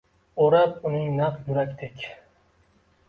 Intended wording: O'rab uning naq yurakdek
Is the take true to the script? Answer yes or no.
yes